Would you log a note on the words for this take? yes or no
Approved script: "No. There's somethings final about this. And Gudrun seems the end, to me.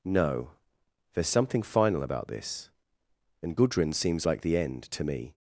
yes